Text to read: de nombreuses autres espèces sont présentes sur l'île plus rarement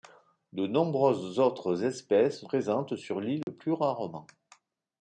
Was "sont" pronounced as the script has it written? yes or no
no